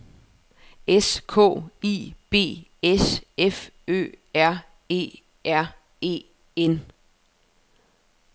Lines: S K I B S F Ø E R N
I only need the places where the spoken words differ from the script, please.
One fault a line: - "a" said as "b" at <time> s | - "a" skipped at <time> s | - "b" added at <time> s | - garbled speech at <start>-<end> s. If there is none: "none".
- "R" added at 4.3 s
- "E" added at 6.0 s